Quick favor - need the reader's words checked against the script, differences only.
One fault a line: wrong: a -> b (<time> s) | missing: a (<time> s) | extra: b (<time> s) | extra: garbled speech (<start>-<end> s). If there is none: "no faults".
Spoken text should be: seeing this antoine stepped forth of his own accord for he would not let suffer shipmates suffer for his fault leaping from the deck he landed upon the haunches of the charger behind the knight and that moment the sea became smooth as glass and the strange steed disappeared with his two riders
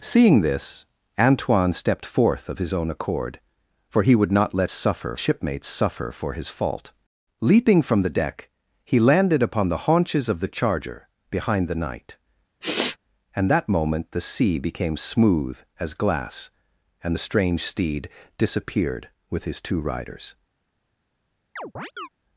no faults